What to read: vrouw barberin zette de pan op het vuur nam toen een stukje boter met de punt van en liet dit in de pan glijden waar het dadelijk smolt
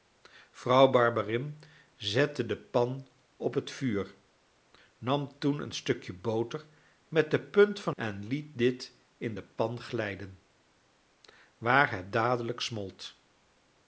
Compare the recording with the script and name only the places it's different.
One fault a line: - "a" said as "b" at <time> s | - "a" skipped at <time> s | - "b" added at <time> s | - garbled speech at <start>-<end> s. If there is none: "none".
none